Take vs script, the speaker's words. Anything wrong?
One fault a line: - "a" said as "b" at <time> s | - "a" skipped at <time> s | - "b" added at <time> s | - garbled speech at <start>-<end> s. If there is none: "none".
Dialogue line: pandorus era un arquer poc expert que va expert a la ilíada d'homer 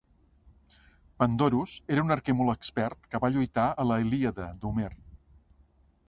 - "poc" said as "molt" at 2.4 s
- "expert" said as "lluitar" at 3.4 s